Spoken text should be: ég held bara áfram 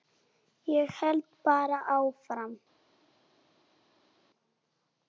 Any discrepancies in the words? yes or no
no